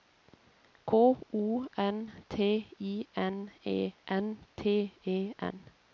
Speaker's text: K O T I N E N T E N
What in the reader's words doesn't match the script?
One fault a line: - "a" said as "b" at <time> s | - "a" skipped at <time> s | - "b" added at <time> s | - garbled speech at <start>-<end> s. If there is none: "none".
- "N" added at 1.8 s